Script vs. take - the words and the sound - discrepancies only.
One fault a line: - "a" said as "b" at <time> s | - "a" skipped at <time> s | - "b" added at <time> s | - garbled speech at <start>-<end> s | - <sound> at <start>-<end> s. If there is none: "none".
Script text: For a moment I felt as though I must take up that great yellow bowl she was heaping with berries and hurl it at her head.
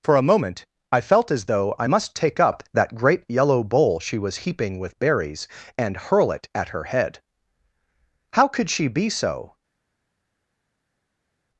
- "How could she be so" added at 8.3 s